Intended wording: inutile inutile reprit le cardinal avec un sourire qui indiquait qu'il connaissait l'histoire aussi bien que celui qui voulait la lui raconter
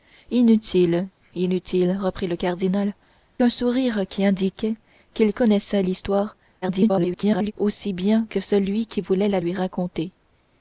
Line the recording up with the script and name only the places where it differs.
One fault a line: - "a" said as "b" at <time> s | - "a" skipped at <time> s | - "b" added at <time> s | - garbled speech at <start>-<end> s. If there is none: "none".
- "avec" skipped at 3.0 s
- garbled speech at 6.6-7.5 s